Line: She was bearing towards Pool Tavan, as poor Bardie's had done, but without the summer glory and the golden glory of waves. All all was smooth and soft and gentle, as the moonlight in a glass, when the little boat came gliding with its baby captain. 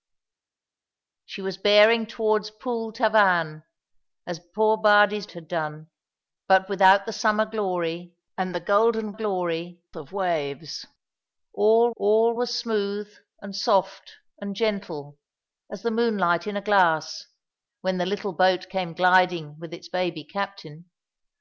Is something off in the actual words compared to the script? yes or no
no